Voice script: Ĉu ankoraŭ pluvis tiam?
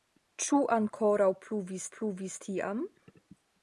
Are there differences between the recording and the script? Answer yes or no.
yes